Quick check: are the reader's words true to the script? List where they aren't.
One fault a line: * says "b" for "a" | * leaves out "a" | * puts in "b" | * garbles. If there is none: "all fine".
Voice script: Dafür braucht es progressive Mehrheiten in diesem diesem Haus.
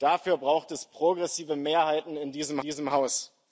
all fine